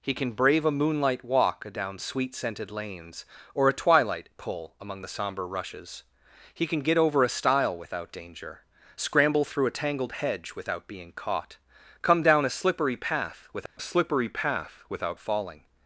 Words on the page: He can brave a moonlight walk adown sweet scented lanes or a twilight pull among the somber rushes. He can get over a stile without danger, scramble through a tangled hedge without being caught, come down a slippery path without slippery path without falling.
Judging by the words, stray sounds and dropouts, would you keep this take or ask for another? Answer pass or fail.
fail